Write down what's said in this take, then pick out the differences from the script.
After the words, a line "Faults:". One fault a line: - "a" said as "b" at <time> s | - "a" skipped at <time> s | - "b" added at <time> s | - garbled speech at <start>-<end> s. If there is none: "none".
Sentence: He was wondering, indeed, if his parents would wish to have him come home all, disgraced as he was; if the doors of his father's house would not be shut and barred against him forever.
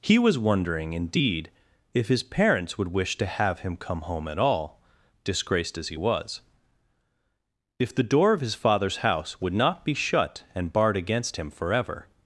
He was wondering, indeed, if his parents would wish to have him come home at all, disgraced as he was; if the door of his father's house would not be shut and barred against him forever.
Faults:
- "at" added at 4.3 s
- "doors" said as "door" at 8.0 s